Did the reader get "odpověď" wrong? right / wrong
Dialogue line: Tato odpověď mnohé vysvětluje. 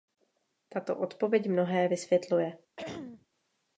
right